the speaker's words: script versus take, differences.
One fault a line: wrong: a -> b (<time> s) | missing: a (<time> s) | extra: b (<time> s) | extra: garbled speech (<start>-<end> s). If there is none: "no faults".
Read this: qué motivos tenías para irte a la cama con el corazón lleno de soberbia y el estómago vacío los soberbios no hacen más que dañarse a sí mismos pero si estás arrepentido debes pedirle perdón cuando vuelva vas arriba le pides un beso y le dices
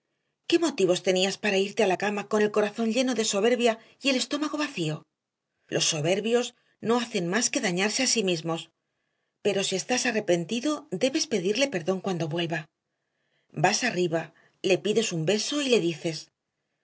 no faults